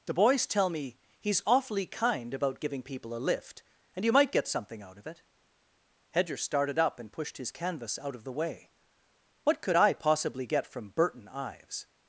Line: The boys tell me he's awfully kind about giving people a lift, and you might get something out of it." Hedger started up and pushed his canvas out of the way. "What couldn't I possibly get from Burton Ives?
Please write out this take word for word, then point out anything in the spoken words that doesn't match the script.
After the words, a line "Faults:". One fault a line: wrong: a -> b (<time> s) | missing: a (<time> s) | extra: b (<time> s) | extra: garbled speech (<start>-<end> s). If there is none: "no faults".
The boys tell me he's awfully kind about giving people a lift, and you might get something out of it." Hedger started up and pushed his canvas out of the way. "What could I possibly get from Burton Ives?
Faults:
wrong: couldn't -> could (9.6 s)